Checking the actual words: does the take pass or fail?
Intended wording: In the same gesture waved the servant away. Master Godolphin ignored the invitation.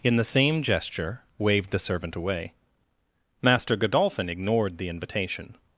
pass